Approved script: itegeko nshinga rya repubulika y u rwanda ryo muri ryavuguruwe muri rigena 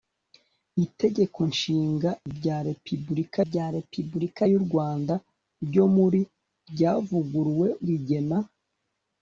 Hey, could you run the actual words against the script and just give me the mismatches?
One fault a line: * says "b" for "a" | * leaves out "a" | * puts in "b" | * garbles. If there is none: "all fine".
* puts in "rya repubulika"
* leaves out "muri"